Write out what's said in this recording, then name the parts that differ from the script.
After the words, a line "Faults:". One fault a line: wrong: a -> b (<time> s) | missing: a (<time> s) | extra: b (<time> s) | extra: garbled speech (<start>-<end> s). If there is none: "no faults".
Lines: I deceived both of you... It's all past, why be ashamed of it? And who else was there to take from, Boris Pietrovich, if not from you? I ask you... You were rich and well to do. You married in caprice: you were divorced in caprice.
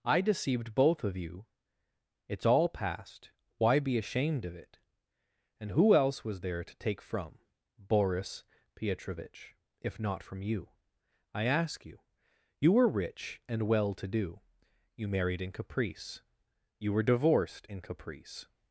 I deceived both of you... It's all past, why be ashamed of it? And who else was there to take from, Boris Pietrovich, if not from you? I ask you... You were rich and well to do. You married in caprice: you were divorced in caprice.
Faults:
no faults